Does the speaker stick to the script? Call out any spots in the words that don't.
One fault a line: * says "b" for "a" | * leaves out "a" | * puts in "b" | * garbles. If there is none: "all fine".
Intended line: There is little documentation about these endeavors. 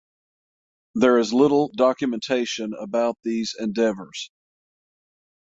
all fine